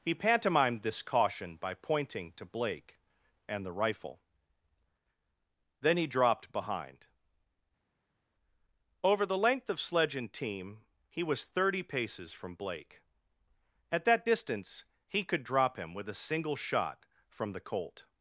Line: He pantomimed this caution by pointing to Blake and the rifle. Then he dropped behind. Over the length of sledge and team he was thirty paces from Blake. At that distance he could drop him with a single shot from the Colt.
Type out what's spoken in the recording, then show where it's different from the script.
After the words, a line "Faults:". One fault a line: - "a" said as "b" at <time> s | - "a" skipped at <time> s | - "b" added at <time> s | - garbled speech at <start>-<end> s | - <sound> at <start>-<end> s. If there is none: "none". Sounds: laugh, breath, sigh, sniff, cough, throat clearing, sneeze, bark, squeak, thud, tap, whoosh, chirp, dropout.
He pantomimed this caution by pointing to Blake and the rifle. Then he dropped behind. Over the length of sledge and team he was thirty paces from Blake. At that distance he could drop him with a single shot from the Colt.
Faults:
none